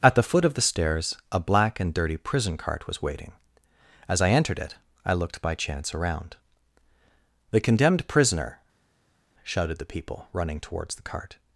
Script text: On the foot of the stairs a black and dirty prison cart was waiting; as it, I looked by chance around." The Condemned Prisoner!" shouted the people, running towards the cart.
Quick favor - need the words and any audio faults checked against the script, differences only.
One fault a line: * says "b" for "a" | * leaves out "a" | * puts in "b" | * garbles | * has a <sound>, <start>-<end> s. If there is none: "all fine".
* says "At" for "On"
* puts in "I entered"